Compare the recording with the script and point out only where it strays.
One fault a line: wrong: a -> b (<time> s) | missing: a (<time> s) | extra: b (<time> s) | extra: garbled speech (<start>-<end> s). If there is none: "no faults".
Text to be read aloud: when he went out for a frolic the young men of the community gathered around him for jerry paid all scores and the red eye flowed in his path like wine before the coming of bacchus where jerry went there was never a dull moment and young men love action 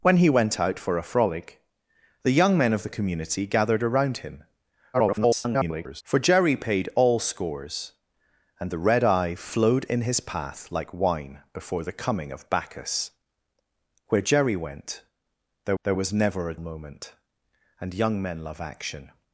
extra: garbled speech (4.9-6.0 s)
extra: there (15.8 s)
missing: dull (16.6 s)